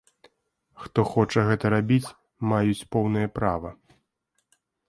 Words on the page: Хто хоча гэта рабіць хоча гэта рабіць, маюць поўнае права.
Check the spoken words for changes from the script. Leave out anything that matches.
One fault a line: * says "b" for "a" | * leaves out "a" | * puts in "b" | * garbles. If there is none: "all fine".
* leaves out "хоча гэта рабіць"